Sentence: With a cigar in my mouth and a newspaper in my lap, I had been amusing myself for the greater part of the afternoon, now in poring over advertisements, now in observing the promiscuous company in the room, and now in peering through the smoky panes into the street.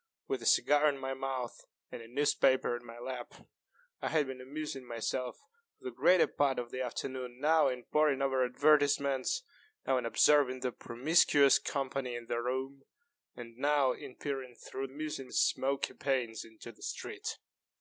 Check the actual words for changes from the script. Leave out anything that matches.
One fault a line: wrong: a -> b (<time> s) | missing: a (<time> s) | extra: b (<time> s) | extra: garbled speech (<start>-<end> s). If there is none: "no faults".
wrong: the -> amusing (14.8 s)